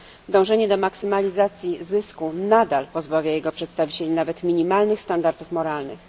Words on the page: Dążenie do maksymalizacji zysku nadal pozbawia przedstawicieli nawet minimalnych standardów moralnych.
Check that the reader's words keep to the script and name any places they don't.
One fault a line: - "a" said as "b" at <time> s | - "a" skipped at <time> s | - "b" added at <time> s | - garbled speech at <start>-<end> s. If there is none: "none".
- "jego" added at 3.3 s